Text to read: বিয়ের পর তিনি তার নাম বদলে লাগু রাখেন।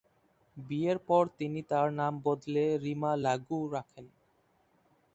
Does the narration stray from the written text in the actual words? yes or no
yes